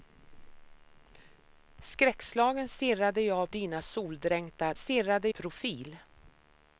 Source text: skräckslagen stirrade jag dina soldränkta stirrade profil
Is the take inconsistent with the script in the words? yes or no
no